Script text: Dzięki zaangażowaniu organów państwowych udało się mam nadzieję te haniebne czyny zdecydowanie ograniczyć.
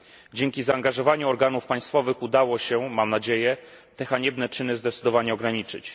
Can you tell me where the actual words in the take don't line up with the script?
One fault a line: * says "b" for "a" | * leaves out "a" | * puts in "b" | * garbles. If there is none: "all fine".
all fine